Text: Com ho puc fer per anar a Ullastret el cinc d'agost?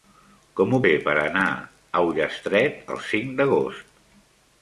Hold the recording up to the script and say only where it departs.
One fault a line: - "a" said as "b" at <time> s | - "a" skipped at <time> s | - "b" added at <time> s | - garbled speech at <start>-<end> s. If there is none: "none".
- "puc" skipped at 0.8 s